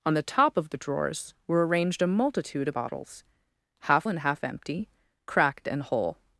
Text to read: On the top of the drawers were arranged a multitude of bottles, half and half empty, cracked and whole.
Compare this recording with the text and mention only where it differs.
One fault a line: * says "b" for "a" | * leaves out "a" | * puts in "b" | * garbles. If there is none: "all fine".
all fine